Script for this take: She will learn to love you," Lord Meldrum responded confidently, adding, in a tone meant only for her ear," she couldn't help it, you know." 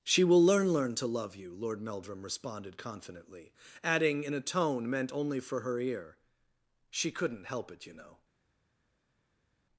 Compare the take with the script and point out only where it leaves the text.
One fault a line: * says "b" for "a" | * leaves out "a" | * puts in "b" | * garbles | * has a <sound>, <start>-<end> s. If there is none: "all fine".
* puts in "learn"